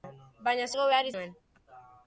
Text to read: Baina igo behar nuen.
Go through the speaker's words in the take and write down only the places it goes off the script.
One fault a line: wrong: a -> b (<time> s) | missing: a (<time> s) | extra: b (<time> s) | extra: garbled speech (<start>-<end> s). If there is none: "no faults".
no faults